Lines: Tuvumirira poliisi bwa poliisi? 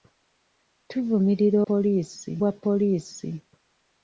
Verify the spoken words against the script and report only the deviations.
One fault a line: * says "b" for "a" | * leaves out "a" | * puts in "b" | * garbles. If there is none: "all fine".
all fine